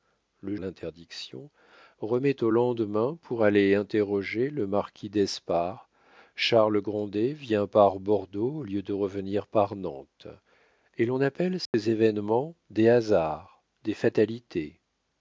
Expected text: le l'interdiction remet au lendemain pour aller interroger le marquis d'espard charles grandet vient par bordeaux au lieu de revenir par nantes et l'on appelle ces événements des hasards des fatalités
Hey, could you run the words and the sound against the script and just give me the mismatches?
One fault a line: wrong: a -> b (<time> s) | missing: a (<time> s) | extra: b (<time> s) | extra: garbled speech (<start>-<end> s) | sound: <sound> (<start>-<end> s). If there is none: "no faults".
sound: dropout (11.7-11.7 s)